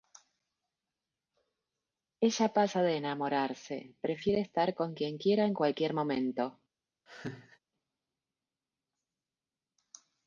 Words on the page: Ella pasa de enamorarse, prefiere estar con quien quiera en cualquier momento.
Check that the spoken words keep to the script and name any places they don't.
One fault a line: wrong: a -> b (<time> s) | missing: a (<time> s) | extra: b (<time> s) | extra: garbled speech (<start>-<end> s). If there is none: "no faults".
no faults